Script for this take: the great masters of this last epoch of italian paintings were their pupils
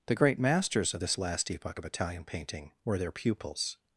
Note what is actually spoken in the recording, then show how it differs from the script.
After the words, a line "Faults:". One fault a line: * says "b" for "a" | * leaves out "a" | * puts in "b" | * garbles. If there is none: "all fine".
the great masters of this last epoch of italian painting were their pupils
Faults:
* says "painting" for "paintings"